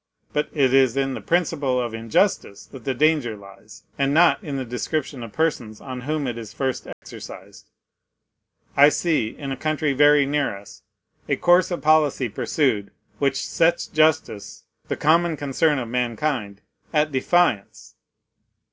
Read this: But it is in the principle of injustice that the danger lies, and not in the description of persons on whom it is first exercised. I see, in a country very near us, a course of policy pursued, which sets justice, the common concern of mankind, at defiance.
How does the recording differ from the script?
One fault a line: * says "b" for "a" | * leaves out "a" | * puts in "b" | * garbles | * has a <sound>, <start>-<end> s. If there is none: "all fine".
* has a dropout, 6.9-7.0 s